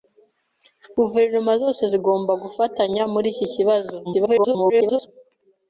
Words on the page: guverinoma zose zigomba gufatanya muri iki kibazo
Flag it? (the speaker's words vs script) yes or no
yes